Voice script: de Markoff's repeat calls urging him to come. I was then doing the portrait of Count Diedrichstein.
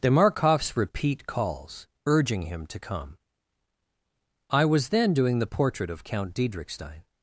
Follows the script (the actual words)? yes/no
yes